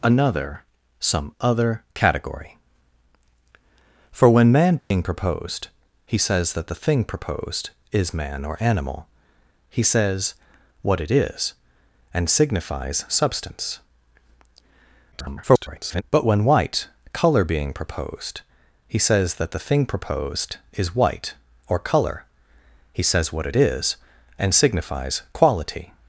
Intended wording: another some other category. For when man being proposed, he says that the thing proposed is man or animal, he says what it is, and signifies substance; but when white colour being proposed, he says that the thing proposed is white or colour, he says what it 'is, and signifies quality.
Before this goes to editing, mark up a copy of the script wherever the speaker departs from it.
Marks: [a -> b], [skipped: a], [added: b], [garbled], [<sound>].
another some other category. For when man being [dropout] proposed, he says that the thing proposed is man or animal, he says what it is, and signifies substance; [garbled] but when white colour being proposed, he says that the thing proposed is white or colour, he says what it 'is, and signifies quality.